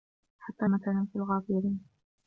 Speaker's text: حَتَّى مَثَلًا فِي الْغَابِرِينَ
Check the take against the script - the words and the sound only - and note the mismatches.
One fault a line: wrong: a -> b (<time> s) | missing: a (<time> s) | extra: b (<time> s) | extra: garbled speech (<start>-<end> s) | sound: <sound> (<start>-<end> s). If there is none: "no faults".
no faults